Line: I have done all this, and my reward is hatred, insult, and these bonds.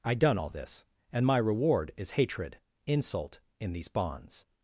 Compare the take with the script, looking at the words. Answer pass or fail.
fail